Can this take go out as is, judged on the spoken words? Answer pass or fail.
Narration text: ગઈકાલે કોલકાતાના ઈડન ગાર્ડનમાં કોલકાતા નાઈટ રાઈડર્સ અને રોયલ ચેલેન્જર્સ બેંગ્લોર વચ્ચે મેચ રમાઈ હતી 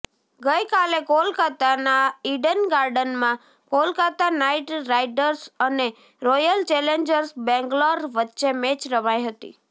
pass